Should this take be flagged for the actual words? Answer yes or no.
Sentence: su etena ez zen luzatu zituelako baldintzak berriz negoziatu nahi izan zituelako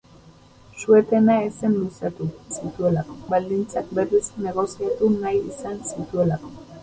no